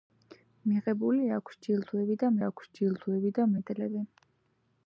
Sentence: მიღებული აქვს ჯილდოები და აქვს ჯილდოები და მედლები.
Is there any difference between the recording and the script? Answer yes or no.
no